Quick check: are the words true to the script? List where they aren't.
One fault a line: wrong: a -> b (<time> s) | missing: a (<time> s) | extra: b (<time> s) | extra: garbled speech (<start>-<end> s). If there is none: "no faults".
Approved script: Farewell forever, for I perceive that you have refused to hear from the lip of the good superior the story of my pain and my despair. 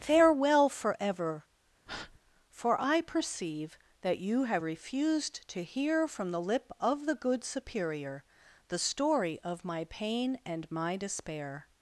no faults